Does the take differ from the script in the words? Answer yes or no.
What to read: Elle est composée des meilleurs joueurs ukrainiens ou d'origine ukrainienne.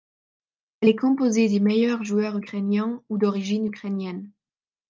no